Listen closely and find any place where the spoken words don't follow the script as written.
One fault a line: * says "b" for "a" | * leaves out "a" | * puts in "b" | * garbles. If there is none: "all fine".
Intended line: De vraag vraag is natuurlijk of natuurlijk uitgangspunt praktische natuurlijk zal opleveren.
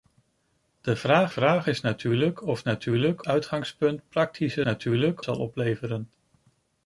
all fine